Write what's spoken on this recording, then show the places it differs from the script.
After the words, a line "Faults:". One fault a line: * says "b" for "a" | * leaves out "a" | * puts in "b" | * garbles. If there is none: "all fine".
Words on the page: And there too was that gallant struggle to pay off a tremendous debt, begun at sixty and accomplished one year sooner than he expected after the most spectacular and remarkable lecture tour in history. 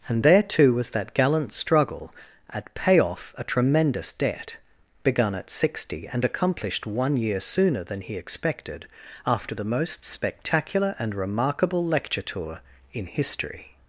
And there too was that gallant struggle at pay off a tremendous debt, begun at sixty and accomplished one year sooner than he expected after the most spectacular and remarkable lecture tour in history.
Faults:
* says "at" for "to"